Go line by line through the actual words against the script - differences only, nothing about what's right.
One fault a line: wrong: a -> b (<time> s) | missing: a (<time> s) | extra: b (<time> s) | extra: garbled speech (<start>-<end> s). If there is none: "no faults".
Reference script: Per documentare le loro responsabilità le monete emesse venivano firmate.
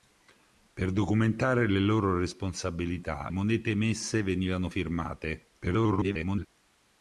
missing: le (3.3 s)
extra: garbled speech (5.6-6.5 s)